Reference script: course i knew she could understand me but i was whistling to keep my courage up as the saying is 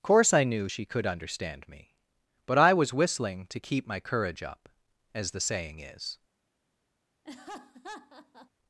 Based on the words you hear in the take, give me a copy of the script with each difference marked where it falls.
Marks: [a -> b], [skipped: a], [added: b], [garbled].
course i knew she could understand me but i was whistling to keep my courage up as the saying is